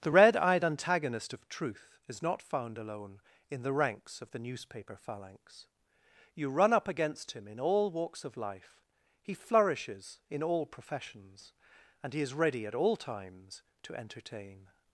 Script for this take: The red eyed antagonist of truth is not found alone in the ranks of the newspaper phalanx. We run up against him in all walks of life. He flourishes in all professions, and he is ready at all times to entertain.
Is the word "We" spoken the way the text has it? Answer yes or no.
no